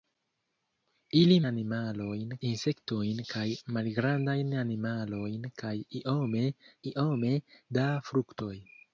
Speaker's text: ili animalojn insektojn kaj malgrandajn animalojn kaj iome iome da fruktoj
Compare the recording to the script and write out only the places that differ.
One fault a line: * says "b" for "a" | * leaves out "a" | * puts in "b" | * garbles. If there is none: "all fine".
all fine